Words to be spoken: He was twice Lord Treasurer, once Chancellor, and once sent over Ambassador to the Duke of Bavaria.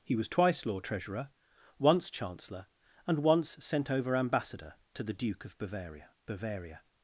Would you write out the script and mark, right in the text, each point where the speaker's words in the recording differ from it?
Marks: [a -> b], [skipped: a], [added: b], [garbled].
He was twice Lord Treasurer, once Chancellor, and once sent over Ambassador to the Duke of Bavaria. [added: Bavaria]